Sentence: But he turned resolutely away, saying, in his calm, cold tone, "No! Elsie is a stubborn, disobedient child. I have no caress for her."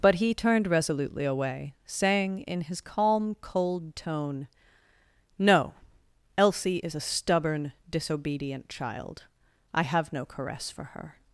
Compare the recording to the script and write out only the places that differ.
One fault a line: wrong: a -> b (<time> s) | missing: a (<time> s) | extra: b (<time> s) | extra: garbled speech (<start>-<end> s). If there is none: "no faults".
no faults